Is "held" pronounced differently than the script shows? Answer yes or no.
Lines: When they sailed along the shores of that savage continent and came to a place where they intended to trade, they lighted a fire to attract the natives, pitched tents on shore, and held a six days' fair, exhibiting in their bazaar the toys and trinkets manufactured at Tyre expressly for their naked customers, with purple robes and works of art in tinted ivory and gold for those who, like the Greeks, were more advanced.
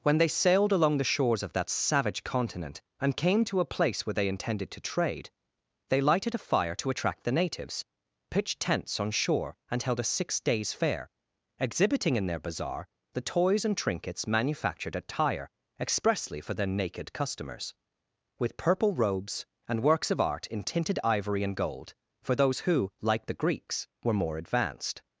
no